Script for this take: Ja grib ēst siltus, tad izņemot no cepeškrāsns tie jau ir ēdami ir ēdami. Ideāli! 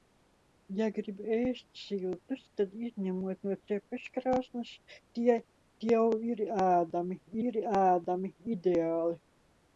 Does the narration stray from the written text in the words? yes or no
no